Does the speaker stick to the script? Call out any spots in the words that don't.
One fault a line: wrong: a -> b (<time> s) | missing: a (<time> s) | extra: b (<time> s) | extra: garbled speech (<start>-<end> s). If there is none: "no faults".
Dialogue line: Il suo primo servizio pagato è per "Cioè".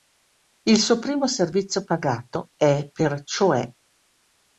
no faults